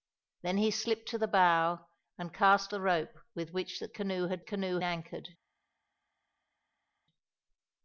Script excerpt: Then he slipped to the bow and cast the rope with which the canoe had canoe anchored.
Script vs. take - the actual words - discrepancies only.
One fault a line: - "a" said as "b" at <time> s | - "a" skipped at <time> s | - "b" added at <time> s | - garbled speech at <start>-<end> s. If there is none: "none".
none